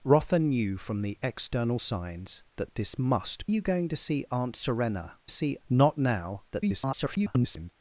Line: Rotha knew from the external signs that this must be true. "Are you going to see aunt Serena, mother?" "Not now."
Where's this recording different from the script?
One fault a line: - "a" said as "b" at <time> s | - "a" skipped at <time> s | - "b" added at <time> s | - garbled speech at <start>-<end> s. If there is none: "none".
- "be true Are" skipped at 3.5 s
- "mother" said as "see" at 5.3 s
- garbled speech at 6.5-7.7 s